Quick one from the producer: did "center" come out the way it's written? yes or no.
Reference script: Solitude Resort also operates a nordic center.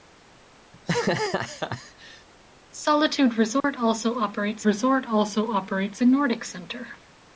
yes